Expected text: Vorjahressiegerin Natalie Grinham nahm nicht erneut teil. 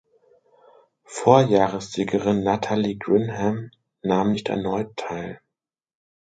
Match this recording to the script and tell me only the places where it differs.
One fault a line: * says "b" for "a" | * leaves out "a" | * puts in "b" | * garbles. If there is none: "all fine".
all fine